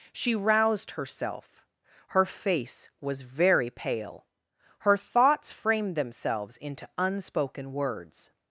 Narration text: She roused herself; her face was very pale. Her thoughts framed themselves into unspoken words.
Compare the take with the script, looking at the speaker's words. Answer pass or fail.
pass